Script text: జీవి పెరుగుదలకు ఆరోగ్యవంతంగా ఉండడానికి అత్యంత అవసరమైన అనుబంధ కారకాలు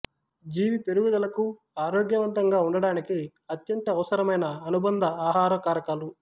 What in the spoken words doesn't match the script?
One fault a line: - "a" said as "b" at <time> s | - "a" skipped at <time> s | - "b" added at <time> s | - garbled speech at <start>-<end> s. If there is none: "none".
- "ఆహార" added at 5.3 s